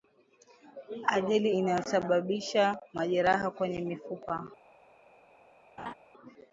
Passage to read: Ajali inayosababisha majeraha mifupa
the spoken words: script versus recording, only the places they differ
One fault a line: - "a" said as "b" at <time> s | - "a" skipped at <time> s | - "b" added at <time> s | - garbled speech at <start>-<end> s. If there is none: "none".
- "kwenye" added at 3.5 s